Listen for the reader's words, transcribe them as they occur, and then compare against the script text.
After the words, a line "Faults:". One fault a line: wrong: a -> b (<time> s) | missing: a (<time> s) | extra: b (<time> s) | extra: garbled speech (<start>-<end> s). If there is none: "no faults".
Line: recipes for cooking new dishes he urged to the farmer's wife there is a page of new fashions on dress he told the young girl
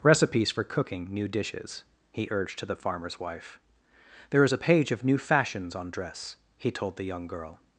recipes for cooking new dishes he urged to the farmer's wife there is a page of new fashions on dress he told the young girl
Faults:
no faults